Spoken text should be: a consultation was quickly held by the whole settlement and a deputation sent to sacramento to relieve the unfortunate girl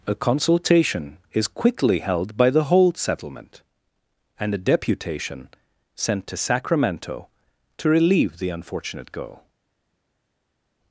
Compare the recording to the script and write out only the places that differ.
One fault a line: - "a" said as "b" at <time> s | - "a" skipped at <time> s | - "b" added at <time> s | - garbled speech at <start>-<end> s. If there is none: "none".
- "was" said as "is" at 1.3 s